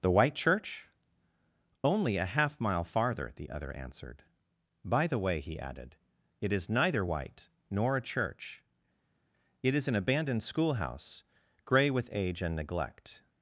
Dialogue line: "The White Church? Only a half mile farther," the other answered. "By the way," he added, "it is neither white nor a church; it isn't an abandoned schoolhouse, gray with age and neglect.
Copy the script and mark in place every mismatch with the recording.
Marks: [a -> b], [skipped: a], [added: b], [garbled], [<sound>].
"The White Church? Only a half mile farther," the other answered. "By the way," he added, "it is neither white nor a church; it [isn't -> is] an abandoned schoolhouse, gray with age and neglect.